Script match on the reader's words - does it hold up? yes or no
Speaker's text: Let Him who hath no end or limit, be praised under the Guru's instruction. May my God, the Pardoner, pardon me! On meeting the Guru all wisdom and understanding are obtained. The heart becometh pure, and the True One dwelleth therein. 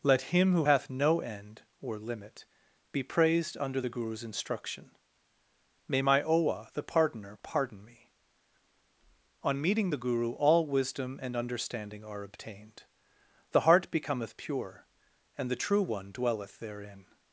no